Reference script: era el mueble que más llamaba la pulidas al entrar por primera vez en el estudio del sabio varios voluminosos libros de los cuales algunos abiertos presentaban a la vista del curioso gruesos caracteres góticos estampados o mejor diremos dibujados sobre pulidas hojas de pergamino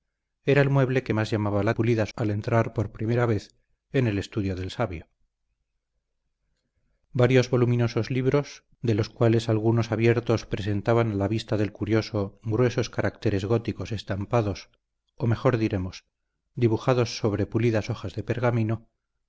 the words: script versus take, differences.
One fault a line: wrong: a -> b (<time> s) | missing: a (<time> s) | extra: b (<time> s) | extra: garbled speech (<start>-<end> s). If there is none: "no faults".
no faults